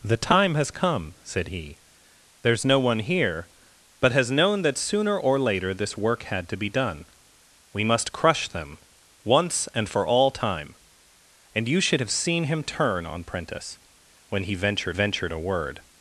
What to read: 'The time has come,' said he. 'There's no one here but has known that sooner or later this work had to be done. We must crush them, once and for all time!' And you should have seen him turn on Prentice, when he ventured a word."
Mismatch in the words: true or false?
true